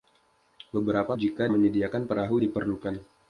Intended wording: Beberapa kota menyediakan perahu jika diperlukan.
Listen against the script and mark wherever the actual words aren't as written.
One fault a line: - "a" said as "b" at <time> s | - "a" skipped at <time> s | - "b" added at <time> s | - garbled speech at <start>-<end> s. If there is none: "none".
- "kota" said as "jika" at 1.1 s
- "jika" skipped at 2.4 s